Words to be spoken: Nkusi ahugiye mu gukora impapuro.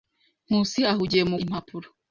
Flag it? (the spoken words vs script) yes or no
yes